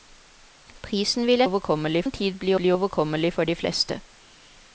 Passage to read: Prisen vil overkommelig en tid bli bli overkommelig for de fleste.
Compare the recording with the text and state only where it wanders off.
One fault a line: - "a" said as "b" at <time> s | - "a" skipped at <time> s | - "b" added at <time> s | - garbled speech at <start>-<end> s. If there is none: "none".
none